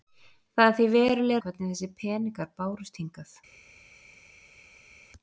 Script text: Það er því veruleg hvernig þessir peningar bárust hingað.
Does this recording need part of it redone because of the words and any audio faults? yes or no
no